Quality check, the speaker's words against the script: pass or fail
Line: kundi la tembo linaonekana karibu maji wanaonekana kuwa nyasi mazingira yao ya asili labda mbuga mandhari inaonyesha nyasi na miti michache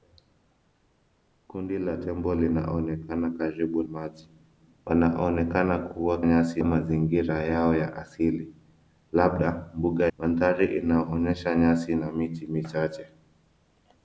pass